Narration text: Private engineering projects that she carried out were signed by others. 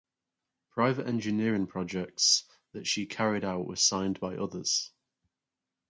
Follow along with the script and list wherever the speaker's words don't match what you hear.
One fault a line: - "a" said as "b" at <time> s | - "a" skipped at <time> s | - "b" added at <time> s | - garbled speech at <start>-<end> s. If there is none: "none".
none